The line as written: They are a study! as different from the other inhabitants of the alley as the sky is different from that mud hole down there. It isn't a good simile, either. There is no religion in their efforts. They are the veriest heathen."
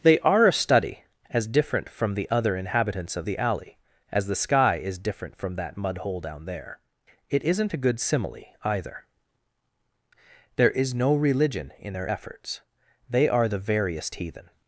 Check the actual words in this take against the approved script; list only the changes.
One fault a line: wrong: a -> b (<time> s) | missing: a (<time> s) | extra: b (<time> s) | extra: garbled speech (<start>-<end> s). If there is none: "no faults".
no faults